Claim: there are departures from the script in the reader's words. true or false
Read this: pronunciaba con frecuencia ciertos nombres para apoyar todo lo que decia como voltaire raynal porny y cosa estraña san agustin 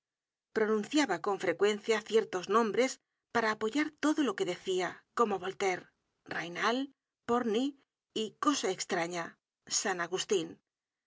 false